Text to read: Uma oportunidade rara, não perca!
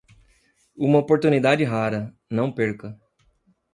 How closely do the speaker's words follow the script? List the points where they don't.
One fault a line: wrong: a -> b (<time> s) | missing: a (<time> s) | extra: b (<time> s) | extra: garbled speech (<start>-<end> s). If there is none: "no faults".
no faults